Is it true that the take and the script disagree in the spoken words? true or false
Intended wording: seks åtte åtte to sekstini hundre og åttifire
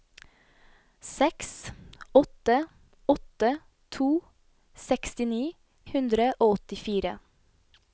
false